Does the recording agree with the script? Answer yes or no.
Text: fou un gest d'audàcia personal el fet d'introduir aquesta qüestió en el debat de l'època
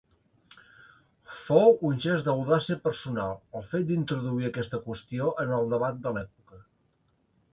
yes